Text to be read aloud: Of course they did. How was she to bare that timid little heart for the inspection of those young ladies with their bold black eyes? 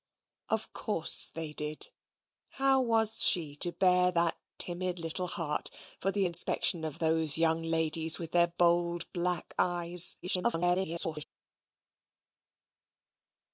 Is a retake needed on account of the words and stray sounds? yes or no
yes